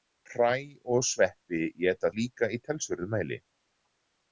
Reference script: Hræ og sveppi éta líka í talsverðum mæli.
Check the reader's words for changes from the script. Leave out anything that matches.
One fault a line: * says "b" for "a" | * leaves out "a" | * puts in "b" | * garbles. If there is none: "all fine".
all fine